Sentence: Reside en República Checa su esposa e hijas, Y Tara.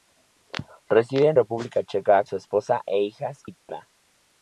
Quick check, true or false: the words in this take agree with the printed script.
true